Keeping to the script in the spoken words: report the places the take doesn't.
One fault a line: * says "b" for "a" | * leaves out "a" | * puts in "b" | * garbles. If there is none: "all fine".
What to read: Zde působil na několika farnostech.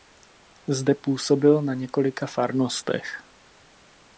all fine